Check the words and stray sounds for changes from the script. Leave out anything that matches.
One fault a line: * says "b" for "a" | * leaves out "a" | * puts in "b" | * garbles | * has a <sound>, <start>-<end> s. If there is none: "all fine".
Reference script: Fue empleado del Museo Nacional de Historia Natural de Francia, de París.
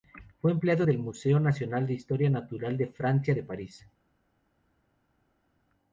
all fine